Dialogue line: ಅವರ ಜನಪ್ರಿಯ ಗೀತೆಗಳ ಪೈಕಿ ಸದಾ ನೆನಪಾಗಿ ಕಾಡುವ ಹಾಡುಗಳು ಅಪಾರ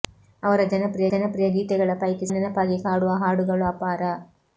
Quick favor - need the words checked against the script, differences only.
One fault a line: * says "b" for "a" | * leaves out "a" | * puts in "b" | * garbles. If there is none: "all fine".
* puts in "ಜನಪ್ರಿಯ"
* leaves out "ಸದಾ"